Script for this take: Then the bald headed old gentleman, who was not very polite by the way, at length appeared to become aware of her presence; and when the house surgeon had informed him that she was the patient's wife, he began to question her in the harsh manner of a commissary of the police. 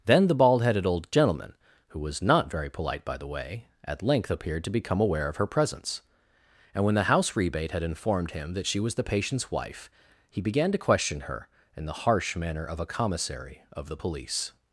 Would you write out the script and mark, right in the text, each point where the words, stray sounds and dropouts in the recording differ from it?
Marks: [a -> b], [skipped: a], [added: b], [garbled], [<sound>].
Then the bald headed old gentleman, who was not very polite by the way, at length appeared to become aware of her presence; and when the house [surgeon -> rebate] had informed him that she was the patient's wife, he began to question her in the harsh manner of a commissary of the police.